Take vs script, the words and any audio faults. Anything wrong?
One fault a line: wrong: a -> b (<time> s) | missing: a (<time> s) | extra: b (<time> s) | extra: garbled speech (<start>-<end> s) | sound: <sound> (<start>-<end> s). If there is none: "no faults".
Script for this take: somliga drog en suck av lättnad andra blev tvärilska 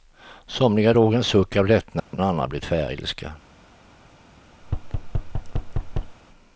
sound: dropout (2.0-2.1 s)
sound: thud (4.6-6.2 s)